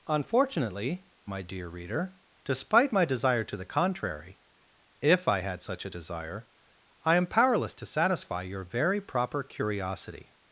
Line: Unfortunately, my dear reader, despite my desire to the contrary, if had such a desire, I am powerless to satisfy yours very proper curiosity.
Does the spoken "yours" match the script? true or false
false